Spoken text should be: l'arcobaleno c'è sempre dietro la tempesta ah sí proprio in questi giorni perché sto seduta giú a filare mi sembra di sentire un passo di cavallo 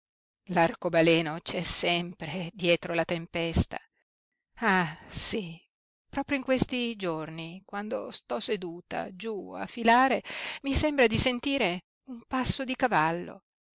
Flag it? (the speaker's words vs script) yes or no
yes